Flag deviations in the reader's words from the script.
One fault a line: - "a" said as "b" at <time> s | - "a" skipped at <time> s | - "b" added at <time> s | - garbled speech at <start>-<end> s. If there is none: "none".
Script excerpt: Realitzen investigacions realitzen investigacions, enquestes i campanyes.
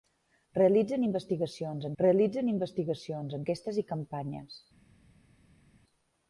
none